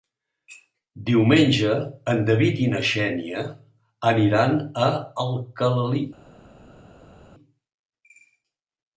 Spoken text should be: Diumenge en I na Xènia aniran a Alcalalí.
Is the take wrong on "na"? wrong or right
right